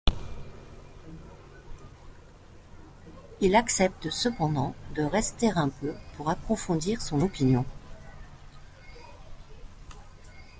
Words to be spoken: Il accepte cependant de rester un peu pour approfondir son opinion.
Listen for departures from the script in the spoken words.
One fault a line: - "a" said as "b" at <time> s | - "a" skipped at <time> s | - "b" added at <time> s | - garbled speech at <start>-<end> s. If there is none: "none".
none